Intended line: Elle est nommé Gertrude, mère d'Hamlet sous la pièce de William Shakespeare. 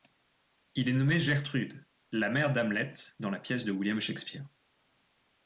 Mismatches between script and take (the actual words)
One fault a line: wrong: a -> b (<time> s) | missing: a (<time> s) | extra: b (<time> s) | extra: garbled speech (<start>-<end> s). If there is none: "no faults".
wrong: Elle -> Il (0.7 s)
extra: la (2.1 s)
wrong: sous -> dans (3.2 s)